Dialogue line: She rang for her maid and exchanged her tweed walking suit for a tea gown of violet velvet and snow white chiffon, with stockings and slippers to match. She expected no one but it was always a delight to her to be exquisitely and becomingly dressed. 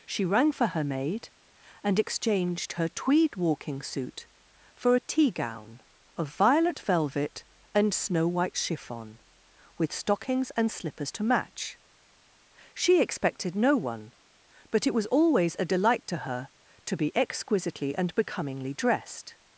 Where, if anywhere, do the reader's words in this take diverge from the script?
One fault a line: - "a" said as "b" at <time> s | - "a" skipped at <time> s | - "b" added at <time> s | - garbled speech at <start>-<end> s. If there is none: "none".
none